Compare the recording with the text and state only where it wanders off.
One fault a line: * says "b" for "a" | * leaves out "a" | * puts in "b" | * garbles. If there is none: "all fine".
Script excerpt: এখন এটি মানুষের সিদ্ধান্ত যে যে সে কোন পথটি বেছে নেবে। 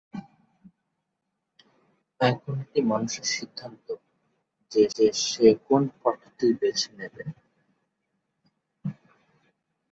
all fine